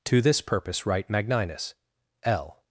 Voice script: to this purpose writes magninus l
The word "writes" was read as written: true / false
false